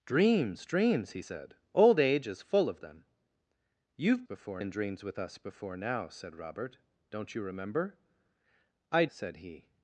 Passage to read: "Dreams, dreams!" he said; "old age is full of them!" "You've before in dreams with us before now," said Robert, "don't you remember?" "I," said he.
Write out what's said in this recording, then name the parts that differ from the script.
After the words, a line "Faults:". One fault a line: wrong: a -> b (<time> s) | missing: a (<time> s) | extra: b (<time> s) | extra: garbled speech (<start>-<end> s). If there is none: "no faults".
"Dreams, dreams!" he said; "old age is full of them!" "You've before in dreams with us before now," said Robert, "don't you remember?" "I," said he.
Faults:
no faults